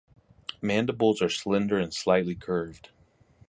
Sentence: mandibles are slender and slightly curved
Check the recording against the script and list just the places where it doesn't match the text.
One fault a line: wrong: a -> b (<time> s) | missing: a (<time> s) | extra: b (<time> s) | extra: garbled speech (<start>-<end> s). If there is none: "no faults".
no faults